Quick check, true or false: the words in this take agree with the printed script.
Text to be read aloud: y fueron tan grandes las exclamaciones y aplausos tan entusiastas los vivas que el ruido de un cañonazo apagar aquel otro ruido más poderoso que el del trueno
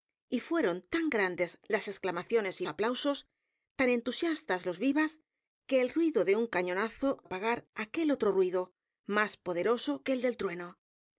true